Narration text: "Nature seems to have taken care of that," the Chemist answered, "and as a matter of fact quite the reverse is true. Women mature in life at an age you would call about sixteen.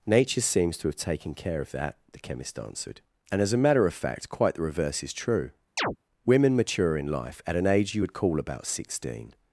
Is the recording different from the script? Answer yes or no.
no